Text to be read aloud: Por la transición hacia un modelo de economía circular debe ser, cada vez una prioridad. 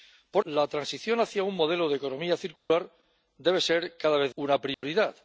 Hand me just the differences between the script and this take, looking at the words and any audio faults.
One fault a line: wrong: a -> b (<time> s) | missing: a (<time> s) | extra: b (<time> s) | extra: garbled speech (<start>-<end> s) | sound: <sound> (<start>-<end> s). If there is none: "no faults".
sound: dropout (2.6-2.7 s)
sound: dropout (4.7-4.8 s)